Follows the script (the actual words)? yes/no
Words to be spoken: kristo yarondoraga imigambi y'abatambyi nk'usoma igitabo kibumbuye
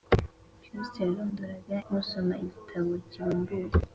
no